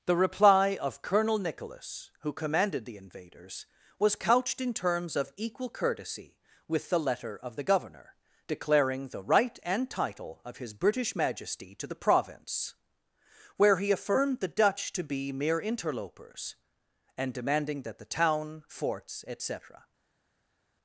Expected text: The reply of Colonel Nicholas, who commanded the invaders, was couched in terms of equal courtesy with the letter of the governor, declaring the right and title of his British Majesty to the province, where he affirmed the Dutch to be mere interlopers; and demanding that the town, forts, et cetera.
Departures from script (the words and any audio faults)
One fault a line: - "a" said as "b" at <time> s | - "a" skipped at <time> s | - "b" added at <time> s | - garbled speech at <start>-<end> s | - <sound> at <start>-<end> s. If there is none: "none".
none